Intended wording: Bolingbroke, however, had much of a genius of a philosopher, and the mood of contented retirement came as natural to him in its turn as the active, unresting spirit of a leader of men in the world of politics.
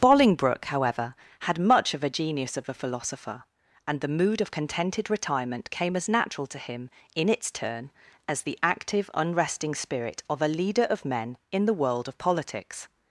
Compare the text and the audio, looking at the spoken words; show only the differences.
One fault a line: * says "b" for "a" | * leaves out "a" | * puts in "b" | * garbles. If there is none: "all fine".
all fine